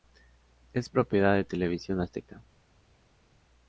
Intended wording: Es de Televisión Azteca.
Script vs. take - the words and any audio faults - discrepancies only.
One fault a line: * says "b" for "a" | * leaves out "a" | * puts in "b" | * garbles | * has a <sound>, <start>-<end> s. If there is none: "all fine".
* puts in "propiedad"